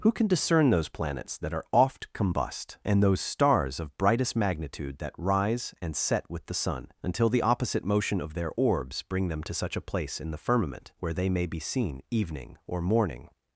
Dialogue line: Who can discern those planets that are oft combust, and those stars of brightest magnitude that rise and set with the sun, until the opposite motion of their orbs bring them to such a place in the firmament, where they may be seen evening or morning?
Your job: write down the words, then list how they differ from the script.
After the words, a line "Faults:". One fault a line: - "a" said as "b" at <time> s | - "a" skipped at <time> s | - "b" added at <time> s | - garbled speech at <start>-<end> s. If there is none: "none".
Who can discern those planets that are oft combust, and those stars of brightest magnitude that rise and set with the sun, until the opposite motion of their orbs bring them to such a place in the firmament, where they may be seen evening or morning?
Faults:
none